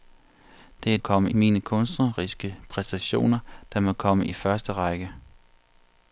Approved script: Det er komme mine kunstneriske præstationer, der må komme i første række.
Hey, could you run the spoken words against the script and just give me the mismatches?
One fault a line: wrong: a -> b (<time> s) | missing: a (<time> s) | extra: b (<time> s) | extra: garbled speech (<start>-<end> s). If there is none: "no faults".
no faults